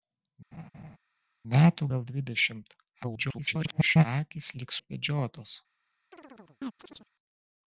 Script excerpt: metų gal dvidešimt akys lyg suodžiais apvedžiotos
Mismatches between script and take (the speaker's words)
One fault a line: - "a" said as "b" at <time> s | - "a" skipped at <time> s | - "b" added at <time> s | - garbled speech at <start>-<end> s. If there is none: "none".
- garbled speech at 3.0-4.1 s
- "suodžiais" skipped at 4.7 s